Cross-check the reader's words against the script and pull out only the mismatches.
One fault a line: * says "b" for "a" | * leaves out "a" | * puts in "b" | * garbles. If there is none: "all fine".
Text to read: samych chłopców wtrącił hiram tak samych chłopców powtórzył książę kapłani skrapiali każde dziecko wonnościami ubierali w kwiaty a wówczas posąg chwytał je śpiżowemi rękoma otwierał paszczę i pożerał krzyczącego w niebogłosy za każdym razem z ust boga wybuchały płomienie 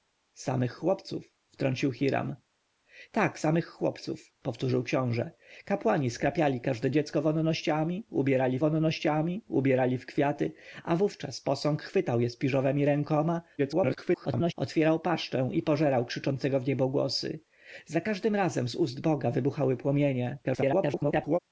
* puts in "wonnościami ubierali"
* garbles
* garbles